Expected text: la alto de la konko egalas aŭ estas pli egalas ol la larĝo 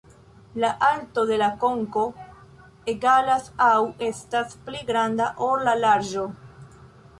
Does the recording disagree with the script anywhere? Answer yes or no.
yes